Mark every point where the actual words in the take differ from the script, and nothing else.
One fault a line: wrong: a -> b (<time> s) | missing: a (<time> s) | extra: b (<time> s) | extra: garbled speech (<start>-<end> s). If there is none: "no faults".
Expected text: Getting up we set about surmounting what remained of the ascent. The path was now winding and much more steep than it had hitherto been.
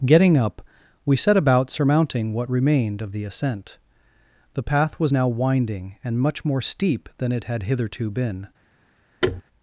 no faults